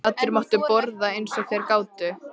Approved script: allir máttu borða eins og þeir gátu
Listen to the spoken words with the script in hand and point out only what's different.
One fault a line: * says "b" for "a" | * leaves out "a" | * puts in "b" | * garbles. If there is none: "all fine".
all fine